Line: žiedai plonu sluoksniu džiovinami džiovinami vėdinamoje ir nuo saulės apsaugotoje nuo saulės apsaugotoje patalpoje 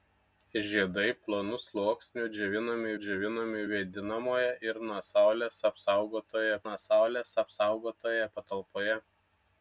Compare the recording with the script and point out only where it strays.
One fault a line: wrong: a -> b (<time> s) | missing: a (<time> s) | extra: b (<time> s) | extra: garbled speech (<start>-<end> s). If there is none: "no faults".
no faults